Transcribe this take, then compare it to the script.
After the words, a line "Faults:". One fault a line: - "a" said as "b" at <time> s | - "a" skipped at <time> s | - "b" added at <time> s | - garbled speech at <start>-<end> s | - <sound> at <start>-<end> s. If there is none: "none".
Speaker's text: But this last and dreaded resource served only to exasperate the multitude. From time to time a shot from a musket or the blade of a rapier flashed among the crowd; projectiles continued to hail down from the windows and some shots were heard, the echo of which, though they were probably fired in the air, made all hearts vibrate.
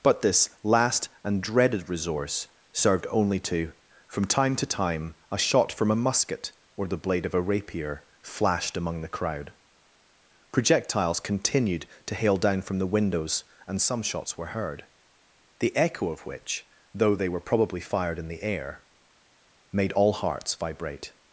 But this last and dreaded resource served only to. From time to time a shot from a musket or the blade of a rapier flashed among the crowd; projectiles continued to hail down from the windows and some shots were heard, the echo of which, though they were probably fired in the air, made all hearts vibrate.
Faults:
- "exasperate the multitude" skipped at 3.7 s